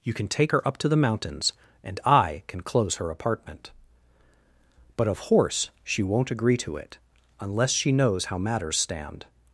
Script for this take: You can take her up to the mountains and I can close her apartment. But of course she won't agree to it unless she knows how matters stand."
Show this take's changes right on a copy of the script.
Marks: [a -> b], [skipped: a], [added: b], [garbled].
You can take her up to the mountains and I can close her apartment. But of [course -> horse] she won't agree to it unless she knows how matters stand."